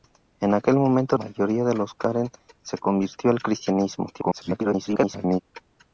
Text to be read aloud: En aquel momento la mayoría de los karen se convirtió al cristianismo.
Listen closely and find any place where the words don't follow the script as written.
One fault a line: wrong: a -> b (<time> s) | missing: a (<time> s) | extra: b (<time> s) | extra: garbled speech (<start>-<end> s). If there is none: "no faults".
missing: la (1.1 s)
extra: garbled speech (4.1-5.4 s)